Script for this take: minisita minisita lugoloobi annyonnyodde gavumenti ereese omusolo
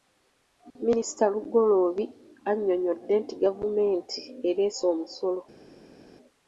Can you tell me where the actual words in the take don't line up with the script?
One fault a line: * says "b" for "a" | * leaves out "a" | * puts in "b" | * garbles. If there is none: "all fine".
* leaves out "minisita"
* puts in "nti"